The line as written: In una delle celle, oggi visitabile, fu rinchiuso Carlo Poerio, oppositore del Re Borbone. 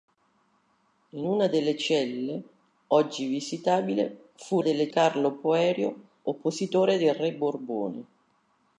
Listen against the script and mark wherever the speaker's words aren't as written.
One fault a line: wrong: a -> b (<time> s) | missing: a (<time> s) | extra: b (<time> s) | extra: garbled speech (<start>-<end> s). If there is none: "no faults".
wrong: rinchiuso -> delle (4.6 s)